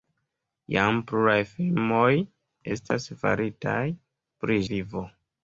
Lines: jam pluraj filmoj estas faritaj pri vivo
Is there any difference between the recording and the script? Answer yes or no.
no